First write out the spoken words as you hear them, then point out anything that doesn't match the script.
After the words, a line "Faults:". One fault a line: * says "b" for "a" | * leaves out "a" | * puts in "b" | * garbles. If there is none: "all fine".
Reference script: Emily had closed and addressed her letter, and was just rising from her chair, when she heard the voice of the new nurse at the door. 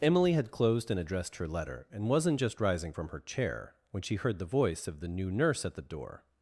Emily had closed and addressed her letter, and wasn't just rising from her chair, when she heard the voice of the new nurse at the door.
Faults:
* says "wasn't" for "was"